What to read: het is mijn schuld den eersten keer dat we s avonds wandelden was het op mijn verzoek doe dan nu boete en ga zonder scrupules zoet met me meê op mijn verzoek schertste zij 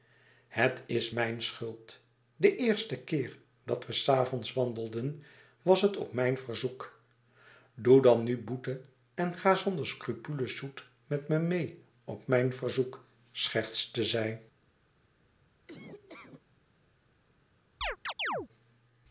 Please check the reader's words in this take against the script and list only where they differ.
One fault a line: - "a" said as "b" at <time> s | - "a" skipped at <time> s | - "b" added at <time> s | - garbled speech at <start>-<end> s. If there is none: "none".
none